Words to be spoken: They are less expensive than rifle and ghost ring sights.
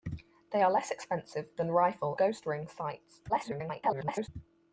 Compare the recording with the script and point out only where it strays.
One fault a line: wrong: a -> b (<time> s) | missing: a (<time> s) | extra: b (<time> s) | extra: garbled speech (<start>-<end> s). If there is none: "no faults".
missing: and (2.2 s)
extra: garbled speech (3.3-4.3 s)